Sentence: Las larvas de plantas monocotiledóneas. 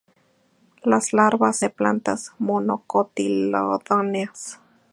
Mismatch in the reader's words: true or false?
false